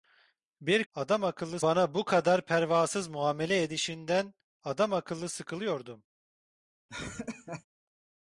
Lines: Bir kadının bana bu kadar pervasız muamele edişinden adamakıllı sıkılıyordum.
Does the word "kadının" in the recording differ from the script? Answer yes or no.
yes